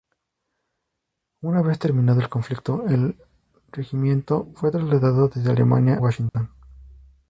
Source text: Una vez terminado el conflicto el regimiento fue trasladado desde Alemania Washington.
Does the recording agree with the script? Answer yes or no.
yes